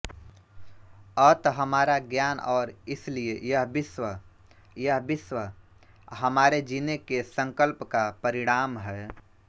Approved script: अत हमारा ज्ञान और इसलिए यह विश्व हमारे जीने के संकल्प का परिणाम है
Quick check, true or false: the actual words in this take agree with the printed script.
false